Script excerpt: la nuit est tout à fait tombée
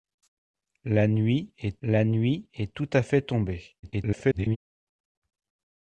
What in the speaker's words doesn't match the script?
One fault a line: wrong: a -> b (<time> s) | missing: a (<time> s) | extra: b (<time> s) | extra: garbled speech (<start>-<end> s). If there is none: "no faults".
extra: la nuit est (1.8 s)
extra: garbled speech (3.8-4.6 s)